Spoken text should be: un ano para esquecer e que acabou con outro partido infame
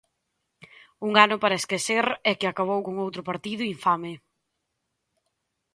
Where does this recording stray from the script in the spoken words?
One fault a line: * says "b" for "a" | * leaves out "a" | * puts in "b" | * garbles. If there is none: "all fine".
all fine